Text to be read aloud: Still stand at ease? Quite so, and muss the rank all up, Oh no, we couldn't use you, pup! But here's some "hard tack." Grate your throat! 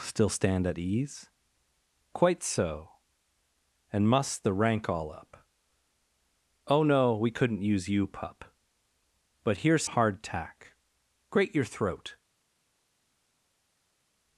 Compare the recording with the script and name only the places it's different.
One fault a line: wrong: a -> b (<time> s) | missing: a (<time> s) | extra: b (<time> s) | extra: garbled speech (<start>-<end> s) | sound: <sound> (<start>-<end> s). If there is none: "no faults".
missing: some (9.8 s)